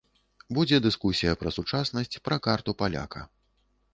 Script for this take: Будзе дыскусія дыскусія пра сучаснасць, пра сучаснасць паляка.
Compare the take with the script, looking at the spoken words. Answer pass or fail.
fail